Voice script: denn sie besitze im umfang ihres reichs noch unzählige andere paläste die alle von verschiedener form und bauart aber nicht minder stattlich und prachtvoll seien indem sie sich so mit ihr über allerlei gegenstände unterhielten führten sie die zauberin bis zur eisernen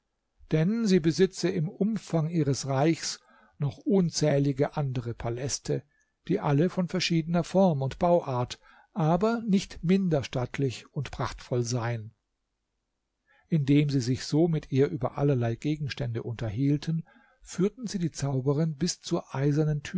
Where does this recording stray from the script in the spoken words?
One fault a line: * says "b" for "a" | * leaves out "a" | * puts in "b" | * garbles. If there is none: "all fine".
all fine